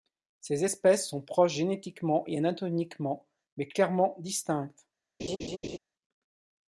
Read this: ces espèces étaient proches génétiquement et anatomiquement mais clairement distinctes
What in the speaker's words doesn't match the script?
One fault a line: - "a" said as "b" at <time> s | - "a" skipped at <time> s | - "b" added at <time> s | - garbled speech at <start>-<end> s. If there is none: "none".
- "étaient" said as "sont" at 1.1 s